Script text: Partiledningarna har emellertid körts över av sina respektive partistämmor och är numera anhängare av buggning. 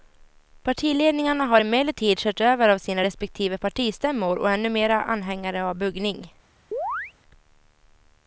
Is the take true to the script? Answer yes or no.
yes